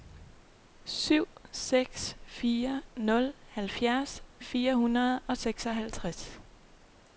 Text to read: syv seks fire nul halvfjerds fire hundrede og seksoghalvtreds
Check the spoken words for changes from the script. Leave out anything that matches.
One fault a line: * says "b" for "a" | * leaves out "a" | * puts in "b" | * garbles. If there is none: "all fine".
all fine